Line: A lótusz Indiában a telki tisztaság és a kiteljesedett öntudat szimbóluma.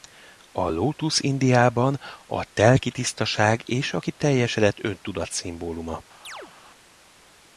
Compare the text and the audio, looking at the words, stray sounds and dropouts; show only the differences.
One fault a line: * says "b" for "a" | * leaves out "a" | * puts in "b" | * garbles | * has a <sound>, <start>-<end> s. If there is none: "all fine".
* has a chirp, 6.2-6.5 s